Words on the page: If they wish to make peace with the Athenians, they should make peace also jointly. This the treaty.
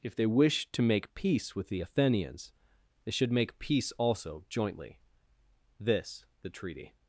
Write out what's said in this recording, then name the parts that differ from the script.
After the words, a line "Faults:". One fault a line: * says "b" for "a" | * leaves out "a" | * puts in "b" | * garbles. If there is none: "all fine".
If they wish to make peace with the Athenians, they should make peace also jointly. This the treaty.
Faults:
all fine